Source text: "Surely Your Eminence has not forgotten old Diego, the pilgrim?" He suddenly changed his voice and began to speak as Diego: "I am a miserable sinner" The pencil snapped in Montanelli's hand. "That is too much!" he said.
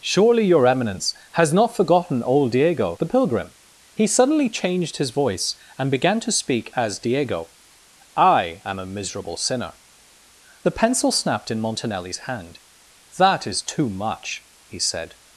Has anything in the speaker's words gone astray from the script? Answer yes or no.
no